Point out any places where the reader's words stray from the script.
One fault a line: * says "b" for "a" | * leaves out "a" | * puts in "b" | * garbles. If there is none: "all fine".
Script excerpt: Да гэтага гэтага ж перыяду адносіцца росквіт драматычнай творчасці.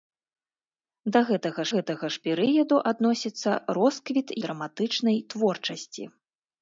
all fine